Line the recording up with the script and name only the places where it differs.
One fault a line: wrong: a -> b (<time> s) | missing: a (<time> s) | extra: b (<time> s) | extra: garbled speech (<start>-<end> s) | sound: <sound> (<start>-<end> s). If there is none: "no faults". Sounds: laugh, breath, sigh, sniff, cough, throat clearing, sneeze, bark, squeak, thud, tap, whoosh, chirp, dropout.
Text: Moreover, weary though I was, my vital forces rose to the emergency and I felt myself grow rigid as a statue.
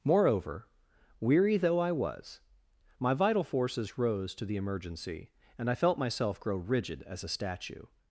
no faults